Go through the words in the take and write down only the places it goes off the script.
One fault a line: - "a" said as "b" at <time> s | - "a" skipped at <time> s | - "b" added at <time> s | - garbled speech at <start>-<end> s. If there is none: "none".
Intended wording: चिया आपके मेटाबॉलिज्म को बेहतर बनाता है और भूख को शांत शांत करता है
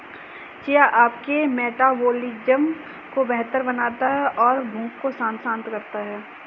none